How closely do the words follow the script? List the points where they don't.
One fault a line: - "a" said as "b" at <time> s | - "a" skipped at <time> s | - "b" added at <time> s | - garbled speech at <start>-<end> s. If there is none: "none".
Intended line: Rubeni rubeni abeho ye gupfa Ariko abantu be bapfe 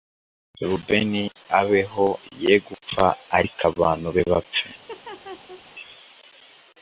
- "rubeni" skipped at 1.2 s